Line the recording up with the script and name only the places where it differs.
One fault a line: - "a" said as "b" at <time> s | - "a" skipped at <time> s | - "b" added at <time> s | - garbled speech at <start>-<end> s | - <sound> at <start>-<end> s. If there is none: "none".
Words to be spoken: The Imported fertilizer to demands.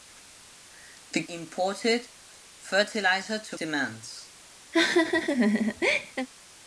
- laugh at 4.7-6.3 s